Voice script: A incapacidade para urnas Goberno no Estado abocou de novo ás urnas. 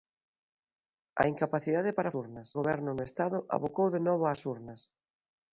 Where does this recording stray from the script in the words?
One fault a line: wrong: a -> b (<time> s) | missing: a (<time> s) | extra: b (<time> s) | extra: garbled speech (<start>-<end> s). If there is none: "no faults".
no faults